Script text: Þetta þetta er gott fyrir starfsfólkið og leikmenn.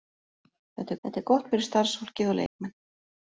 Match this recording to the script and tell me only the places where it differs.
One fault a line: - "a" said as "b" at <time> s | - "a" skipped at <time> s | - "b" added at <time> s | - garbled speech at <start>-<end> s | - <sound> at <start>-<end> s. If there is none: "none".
- dropout at 2.5-2.6 s